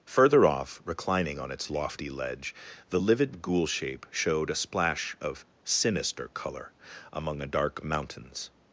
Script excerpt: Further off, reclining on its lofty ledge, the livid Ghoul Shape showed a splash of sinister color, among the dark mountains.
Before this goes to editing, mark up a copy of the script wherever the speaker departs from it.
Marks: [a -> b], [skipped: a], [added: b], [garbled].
Further off, reclining on its lofty ledge, the livid Ghoul Shape showed a splash of sinister color, among [the -> a] dark mountains.